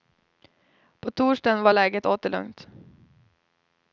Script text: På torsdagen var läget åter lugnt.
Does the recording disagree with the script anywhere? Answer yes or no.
no